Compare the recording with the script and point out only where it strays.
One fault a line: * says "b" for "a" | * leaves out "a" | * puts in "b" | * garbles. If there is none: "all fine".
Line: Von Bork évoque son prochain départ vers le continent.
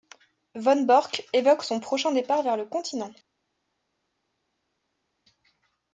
all fine